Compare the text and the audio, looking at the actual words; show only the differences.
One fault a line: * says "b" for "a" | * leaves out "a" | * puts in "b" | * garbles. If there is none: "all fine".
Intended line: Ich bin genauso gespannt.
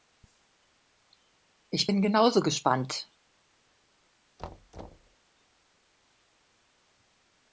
all fine